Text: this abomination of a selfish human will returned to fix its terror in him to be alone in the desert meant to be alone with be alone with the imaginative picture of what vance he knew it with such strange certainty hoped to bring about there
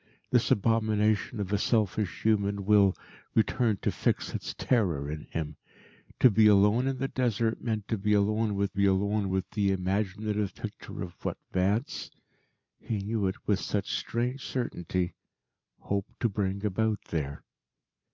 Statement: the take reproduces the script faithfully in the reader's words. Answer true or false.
true